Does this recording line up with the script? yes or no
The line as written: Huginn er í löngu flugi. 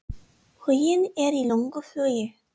yes